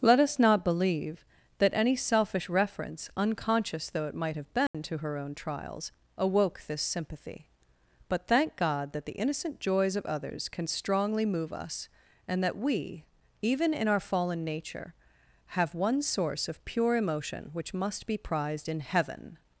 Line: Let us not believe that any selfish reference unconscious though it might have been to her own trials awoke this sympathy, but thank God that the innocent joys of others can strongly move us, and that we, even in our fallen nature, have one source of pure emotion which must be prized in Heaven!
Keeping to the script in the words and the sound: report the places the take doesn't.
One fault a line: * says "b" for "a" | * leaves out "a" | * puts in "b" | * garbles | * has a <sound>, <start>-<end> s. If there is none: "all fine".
* has a dropout, 4.7-4.7 s